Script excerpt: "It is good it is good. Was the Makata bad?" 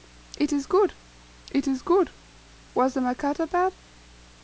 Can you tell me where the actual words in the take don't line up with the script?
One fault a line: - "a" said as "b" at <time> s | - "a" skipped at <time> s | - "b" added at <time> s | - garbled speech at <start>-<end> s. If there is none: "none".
none